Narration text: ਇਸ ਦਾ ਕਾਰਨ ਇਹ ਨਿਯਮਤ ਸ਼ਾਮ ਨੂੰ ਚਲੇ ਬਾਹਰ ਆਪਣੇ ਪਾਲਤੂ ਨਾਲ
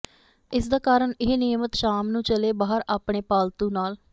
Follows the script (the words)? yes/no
yes